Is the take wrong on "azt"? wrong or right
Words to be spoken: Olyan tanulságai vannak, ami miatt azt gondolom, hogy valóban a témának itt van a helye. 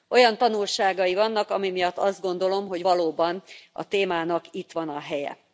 right